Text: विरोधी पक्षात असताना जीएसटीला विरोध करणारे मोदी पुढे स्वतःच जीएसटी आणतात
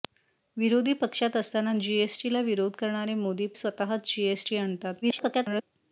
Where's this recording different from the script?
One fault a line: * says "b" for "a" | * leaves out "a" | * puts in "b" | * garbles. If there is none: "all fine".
* leaves out "पुढे"
* garbles